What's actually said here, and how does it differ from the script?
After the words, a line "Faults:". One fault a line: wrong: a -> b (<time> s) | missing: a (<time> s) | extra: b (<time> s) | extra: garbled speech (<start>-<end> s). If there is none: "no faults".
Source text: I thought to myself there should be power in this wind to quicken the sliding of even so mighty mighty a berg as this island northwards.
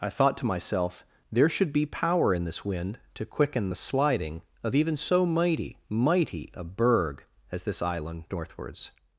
I thought to myself there should be power in this wind to quicken the sliding of even so mighty mighty a berg as this island northwards.
Faults:
no faults